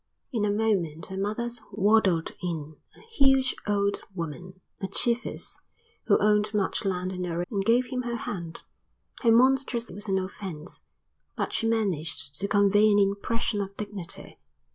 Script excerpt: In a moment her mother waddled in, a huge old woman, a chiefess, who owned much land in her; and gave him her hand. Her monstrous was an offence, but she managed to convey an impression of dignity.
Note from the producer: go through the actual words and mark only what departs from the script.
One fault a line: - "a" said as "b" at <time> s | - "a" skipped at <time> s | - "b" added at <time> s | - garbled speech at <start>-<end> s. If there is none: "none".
none